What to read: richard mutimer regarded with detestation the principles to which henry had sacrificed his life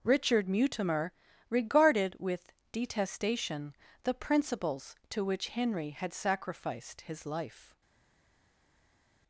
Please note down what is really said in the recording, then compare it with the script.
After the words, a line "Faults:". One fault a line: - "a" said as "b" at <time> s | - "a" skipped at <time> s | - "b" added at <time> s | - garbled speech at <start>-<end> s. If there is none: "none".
richard mutimer regarded with detestation the principles to which henry had sacrificed his life
Faults:
none